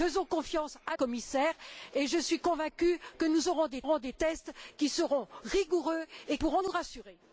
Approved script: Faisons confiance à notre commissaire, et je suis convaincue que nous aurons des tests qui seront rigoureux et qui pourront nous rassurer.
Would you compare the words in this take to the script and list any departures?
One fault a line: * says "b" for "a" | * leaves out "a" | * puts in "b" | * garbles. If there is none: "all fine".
* leaves out "notre"
* puts in "aurons des"
* leaves out "qui"